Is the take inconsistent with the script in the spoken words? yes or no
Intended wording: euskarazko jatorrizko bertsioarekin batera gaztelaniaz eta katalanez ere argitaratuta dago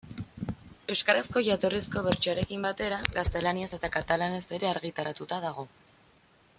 no